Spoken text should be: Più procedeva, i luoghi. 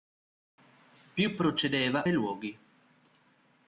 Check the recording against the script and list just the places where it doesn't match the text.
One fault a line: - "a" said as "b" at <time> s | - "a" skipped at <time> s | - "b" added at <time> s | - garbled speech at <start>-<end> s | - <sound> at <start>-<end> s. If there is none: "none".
none